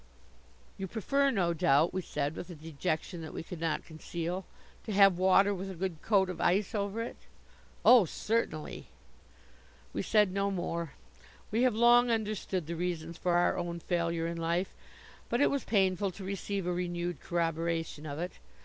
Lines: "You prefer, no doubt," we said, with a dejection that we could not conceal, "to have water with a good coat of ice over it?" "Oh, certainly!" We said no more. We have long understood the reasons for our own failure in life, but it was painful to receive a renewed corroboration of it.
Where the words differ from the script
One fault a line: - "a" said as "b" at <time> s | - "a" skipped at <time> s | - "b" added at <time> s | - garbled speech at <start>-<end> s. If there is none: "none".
none